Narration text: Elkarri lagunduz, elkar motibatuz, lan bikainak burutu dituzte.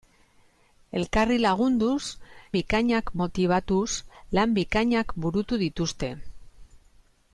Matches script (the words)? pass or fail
fail